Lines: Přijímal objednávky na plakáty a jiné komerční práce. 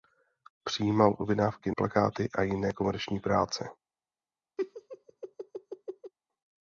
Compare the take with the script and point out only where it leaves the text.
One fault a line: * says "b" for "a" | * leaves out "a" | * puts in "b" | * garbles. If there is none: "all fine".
* leaves out "na"